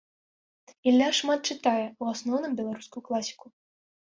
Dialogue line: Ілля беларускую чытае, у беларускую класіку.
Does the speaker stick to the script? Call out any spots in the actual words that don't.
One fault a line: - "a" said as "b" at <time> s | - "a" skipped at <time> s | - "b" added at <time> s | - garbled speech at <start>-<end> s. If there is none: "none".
- "беларускую" said as "шмат" at 1.2 s
- "асноўным" added at 2.1 s